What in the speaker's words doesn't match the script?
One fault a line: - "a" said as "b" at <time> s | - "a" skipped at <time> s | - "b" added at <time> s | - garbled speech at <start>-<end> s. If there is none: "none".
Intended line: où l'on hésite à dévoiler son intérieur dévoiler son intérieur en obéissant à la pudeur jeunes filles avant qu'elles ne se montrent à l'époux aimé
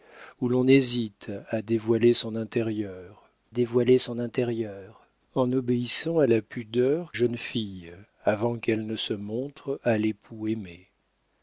none